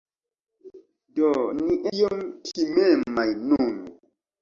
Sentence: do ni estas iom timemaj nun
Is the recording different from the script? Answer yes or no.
yes